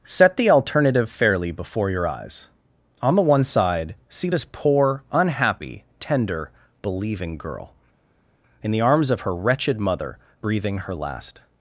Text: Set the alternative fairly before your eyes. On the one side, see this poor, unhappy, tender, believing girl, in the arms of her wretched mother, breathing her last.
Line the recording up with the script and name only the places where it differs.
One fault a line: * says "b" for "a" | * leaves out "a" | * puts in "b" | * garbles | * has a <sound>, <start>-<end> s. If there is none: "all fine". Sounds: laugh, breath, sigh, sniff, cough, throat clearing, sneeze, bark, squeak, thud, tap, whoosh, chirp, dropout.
all fine